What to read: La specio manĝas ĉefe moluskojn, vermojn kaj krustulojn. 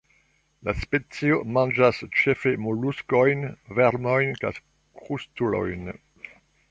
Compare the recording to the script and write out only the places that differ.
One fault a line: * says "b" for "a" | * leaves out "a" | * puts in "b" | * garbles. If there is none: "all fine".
all fine